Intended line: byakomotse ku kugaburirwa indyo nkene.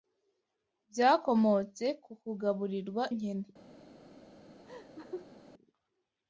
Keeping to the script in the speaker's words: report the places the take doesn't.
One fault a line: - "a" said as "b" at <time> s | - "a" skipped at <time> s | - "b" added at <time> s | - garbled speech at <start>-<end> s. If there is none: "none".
- "indyo" skipped at 3.0 s